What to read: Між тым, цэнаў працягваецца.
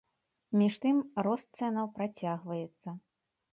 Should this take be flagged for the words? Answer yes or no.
yes